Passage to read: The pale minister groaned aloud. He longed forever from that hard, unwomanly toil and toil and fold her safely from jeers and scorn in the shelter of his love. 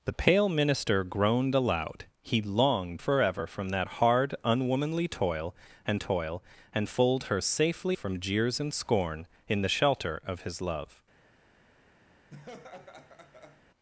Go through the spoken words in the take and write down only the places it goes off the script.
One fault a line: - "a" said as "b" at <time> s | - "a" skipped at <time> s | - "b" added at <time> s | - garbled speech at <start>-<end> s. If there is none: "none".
none